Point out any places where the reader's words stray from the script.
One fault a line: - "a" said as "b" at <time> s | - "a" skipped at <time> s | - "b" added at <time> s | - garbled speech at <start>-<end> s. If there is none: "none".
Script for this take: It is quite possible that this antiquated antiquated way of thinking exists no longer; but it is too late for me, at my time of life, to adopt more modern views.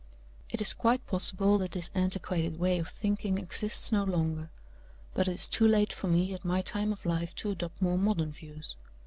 - "antiquated" skipped at 2.6 s